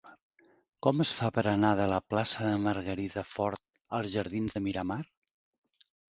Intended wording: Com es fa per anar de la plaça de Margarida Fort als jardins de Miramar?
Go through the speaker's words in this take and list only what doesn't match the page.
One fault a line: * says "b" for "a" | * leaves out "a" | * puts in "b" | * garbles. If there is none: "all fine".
all fine